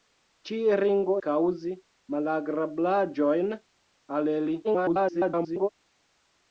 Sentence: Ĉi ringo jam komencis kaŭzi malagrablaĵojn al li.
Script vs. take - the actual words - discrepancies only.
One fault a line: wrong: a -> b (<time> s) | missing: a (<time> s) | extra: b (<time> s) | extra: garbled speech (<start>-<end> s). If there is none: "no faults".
missing: jam komencis (1.2 s)
extra: garbled speech (4.6-5.7 s)